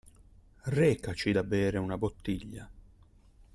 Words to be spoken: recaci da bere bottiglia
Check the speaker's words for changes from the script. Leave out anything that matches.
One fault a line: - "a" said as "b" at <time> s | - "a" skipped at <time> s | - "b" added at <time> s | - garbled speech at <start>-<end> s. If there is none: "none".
- "una" added at 1.8 s